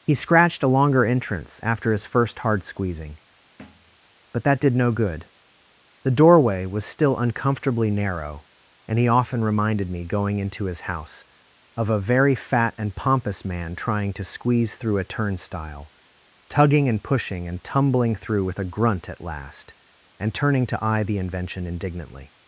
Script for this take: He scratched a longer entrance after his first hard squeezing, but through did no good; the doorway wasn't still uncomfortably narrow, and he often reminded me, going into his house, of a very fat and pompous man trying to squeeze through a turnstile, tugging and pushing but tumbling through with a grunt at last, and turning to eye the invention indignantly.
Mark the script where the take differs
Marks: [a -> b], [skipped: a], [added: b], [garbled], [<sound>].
He scratched a longer entrance after his first hard squeezing, [thud] but [through -> that] did no good; the doorway [wasn't -> was] still uncomfortably narrow, and he often reminded me, going into his house, of a very fat and pompous man trying to squeeze through a turnstile, tugging and pushing [but -> and] tumbling through with a grunt at last, and turning to eye the invention indignantly.